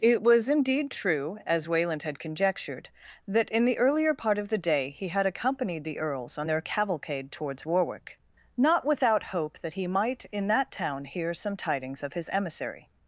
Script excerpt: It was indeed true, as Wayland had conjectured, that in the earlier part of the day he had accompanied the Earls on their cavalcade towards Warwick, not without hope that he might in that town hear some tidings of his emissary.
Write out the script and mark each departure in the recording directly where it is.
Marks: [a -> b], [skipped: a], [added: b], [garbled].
It was indeed true, as Wayland had conjectured, that in the earlier part of the day he had accompanied the Earls on their cavalcade towards Warwick, not without hope that he might in that town hear some tidings of his emissary.